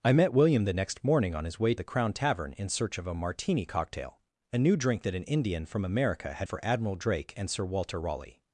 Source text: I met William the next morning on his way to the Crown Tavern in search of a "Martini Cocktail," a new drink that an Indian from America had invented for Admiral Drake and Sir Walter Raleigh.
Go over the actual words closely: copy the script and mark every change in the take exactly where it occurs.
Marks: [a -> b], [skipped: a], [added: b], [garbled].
I met William the next morning on his way [skipped: to] the Crown Tavern in search of a "Martini Cocktail," a new drink that an Indian from America had [skipped: invented] for Admiral Drake and Sir Walter Raleigh.